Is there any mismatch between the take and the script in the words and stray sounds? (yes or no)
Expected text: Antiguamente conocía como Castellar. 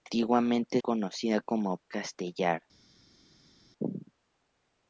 no